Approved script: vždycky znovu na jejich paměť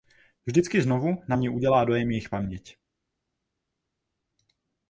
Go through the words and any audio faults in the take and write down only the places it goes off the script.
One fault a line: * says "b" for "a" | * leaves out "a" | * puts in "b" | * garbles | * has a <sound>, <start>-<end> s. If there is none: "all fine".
* puts in "mě udělá dojem"